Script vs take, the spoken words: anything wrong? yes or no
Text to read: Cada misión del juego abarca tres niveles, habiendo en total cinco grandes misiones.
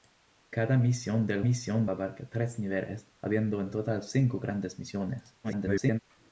yes